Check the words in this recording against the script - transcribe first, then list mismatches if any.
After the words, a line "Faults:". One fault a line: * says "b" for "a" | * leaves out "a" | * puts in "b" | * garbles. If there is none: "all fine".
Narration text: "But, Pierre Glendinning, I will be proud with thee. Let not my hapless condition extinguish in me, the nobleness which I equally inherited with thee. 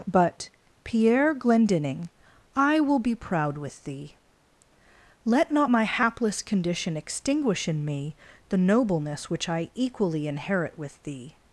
"But, Pierre Glendinning, I will be proud with thee. Let not my hapless condition extinguish in me, the nobleness which I equally inherit with thee.
Faults:
* says "inherit" for "inherited"